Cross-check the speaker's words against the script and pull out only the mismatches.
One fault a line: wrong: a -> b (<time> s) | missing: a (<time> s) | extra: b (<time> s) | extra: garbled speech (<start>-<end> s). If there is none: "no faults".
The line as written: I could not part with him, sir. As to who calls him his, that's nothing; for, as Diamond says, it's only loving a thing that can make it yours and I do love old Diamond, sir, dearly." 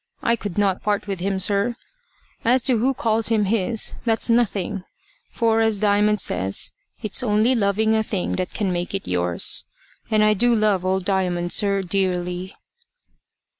no faults